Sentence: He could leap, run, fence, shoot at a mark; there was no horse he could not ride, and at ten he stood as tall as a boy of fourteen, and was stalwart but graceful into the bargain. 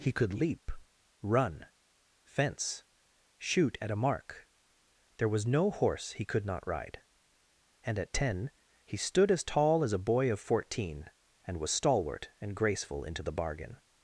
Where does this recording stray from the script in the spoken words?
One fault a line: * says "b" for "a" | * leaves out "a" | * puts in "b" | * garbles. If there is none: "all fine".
* says "and" for "but"